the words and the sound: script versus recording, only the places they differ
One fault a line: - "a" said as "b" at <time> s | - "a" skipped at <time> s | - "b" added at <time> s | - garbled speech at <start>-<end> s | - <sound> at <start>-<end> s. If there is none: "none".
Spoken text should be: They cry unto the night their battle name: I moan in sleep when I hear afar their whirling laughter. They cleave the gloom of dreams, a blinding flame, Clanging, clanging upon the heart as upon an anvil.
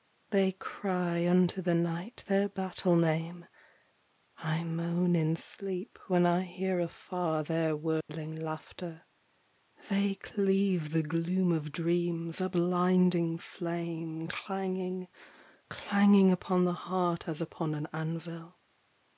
- dropout at 8.0-8.1 s